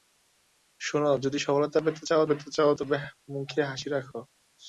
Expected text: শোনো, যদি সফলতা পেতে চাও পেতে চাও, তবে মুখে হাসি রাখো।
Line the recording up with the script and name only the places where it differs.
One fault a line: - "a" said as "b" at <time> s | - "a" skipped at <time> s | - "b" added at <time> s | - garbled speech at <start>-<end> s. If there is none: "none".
none